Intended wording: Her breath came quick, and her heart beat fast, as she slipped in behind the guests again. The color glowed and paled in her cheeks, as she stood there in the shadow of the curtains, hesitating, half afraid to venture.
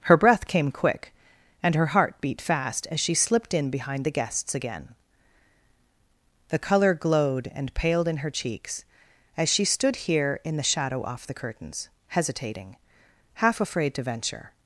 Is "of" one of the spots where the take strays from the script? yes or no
yes